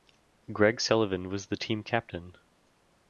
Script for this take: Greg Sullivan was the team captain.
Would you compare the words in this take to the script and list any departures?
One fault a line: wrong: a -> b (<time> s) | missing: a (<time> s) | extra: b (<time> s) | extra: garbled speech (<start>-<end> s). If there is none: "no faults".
no faults